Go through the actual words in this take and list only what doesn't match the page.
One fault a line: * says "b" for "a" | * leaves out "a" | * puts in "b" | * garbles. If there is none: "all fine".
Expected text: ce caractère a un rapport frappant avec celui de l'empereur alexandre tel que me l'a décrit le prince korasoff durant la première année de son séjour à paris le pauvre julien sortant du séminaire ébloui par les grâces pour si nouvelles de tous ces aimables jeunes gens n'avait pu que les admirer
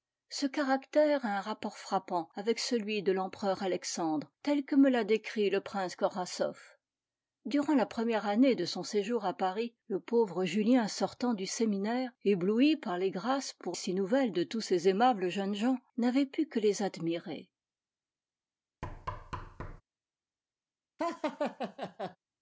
all fine